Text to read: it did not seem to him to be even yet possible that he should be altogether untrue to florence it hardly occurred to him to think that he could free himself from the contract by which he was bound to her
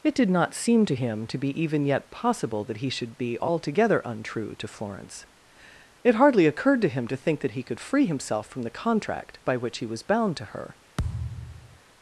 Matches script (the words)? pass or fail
pass